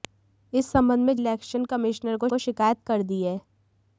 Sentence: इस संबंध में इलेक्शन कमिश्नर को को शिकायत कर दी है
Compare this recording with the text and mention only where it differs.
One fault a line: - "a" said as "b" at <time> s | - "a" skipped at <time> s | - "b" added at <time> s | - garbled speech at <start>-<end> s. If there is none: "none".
none